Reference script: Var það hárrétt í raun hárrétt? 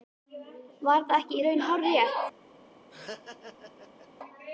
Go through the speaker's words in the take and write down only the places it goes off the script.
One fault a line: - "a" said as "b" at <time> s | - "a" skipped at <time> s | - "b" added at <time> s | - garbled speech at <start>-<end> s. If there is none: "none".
- "hárrétt" said as "ekki" at 1.2 s